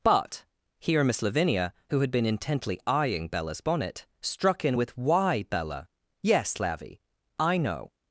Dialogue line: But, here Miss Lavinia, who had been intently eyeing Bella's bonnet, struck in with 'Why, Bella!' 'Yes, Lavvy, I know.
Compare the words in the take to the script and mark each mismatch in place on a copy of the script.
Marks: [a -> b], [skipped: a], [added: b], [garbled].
But, here Miss Lavinia, who had been intently eyeing Bella's bonnet, struck in with 'Why, Bella!' 'Yes, Lavvy, I know.